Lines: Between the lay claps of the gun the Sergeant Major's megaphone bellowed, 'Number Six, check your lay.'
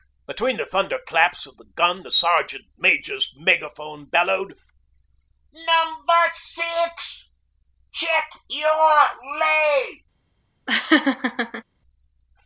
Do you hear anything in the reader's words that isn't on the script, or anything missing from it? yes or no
yes